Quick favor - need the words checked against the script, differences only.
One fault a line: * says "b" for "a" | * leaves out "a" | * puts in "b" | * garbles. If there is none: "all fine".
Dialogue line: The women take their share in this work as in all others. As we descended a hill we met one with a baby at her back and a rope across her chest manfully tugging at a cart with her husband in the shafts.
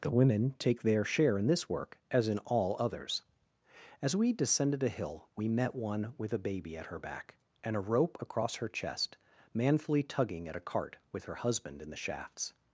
all fine